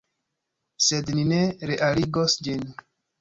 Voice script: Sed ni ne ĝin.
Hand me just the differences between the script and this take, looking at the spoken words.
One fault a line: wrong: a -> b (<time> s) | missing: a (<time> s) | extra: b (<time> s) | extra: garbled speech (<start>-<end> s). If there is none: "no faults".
extra: realigos (1.7 s)